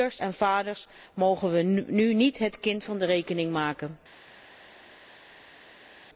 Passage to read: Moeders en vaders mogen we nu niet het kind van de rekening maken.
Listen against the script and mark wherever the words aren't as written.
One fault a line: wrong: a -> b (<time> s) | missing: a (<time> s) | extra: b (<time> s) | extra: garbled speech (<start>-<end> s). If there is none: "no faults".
no faults